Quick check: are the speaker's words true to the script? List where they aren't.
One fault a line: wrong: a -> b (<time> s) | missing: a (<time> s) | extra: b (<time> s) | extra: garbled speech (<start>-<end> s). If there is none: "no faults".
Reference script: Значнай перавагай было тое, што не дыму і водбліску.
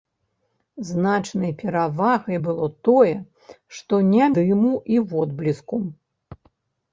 no faults